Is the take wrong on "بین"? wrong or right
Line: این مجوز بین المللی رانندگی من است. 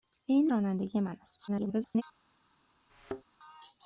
wrong